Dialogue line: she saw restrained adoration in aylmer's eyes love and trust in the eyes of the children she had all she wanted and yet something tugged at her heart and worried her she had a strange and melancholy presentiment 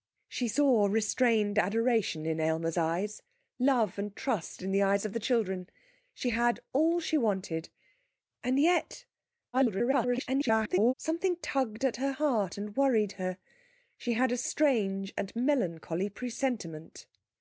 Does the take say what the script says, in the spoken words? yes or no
no